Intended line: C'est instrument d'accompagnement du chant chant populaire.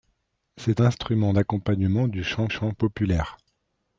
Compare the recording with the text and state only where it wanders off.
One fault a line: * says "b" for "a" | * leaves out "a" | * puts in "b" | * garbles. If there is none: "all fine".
all fine